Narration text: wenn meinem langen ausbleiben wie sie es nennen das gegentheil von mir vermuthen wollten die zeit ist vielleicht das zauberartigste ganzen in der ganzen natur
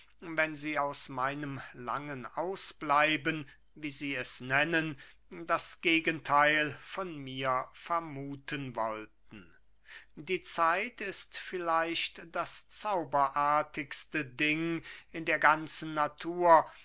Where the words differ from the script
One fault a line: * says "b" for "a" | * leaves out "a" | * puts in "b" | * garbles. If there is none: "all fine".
* puts in "sie aus"
* says "ding" for "ganzen"